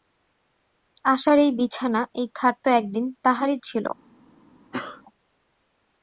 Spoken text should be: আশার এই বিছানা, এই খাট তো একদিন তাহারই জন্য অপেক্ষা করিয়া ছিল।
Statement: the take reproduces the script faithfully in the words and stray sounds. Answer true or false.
false